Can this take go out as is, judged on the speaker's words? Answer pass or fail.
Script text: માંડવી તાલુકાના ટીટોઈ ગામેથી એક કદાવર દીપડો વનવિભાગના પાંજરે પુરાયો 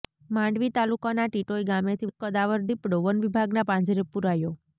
pass